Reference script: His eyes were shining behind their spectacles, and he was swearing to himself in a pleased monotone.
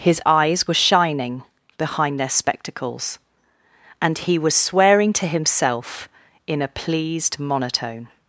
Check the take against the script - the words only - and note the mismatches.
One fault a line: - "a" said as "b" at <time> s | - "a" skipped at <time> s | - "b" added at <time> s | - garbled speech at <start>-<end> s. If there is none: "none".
none